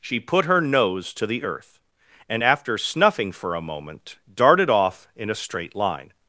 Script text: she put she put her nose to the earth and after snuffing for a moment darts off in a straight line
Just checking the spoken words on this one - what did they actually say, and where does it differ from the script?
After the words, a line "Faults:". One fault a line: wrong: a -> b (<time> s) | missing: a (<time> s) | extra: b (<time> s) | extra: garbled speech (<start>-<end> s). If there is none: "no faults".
she put her nose to the earth and after snuffing for a moment darted off in a straight line
Faults:
missing: she put (0.5 s)
wrong: darts -> darted (4.3 s)